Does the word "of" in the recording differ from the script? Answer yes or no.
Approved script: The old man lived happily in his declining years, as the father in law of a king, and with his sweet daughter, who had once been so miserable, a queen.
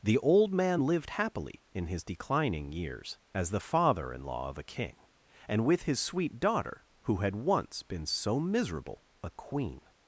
no